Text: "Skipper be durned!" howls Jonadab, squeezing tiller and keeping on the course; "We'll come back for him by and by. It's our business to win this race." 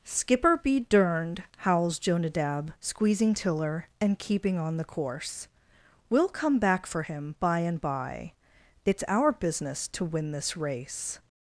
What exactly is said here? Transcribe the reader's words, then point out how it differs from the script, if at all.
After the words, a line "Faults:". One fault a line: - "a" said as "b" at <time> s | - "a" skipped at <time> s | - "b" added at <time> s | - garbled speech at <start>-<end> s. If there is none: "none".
"Skipper be durned!" howls Jonadab, squeezing tiller and keeping on the course; "We'll come back for him by and by. It's our business to win this race."
Faults:
none